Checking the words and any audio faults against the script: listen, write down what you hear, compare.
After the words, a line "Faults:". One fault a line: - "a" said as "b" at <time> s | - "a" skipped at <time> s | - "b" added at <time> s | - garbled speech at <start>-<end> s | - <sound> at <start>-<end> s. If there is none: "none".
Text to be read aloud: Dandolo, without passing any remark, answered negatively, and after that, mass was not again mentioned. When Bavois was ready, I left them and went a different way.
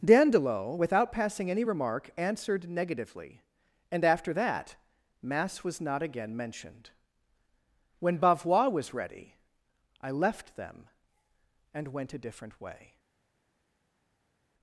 Dandolo, without passing any remark, answered negatively, and after that, mass was not again mentioned. When Bavois was ready, I left them and went a different way.
Faults:
none